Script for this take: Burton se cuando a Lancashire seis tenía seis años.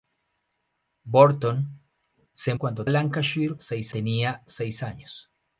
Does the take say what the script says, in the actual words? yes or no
yes